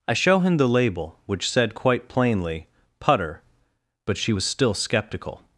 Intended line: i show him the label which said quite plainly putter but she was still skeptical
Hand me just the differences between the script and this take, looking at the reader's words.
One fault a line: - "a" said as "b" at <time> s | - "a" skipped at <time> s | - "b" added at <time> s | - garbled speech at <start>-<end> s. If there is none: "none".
none